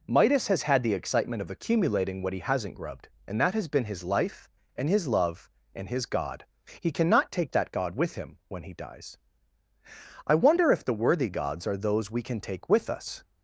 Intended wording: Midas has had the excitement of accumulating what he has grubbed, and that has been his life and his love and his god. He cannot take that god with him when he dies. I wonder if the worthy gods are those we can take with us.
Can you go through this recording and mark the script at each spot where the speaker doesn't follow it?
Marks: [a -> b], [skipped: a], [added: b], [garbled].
Midas has had the excitement of accumulating what he [has -> hasn't] grubbed, and that has been his life and his love and his god. He cannot take that god with him when he dies. I wonder if the worthy gods are those we can take with us.